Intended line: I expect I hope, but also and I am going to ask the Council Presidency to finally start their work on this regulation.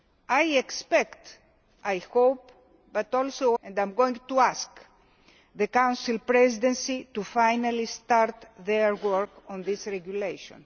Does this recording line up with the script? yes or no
yes